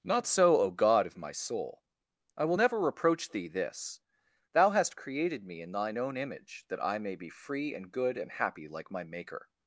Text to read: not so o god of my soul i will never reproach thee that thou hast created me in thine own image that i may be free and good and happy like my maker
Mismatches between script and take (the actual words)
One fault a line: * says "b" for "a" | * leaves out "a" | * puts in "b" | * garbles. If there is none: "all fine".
* says "this" for "that"